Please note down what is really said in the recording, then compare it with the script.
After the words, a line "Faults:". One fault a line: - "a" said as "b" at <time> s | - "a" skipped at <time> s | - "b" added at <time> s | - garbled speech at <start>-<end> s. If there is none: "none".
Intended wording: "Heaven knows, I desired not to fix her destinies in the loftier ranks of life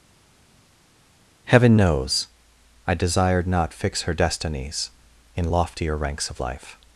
"Heaven knows, I desired not fix her destinies in loftier ranks of life
Faults:
- "to" skipped at 3.7 s
- "the" skipped at 5.5 s